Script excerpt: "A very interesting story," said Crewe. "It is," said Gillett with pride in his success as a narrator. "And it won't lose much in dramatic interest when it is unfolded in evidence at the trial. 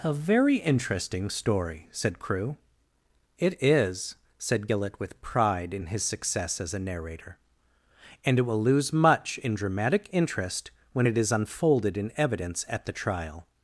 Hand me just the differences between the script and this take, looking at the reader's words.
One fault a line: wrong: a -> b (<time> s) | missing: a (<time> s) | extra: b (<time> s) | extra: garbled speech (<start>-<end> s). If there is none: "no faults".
wrong: won't -> will (8.4 s)